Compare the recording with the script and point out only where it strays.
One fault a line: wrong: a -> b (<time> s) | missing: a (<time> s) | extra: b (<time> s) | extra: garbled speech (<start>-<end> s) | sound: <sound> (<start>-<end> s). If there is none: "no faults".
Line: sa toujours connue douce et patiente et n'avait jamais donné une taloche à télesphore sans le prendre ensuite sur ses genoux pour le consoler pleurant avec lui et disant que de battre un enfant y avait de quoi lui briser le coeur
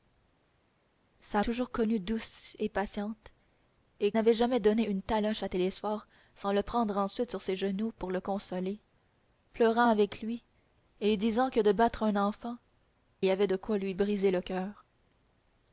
no faults